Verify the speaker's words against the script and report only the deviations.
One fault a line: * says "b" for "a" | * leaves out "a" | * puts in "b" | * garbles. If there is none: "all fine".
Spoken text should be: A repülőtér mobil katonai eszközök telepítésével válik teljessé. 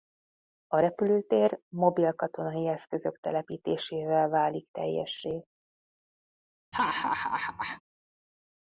all fine